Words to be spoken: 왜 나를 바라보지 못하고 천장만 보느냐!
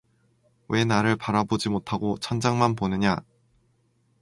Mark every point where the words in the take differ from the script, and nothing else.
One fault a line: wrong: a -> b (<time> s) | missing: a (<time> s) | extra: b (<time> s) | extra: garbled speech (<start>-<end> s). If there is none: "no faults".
no faults